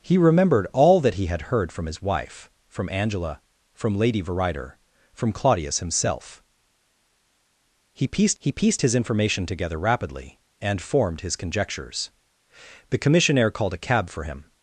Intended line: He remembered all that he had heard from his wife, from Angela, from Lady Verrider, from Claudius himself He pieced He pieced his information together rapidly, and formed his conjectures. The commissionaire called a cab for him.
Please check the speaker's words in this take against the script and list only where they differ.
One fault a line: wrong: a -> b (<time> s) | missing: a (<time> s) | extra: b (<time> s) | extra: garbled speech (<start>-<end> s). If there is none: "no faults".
no faults